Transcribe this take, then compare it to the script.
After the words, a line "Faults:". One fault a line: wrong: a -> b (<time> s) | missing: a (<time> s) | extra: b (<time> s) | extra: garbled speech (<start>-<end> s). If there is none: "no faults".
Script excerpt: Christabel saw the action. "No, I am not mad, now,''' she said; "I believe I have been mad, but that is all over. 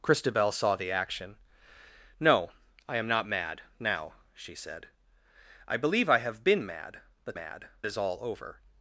Christabel saw the action. "No, I am not mad, now,''' she said; "I believe I have been mad, but mad is all over.
Faults:
wrong: that -> mad (7.3 s)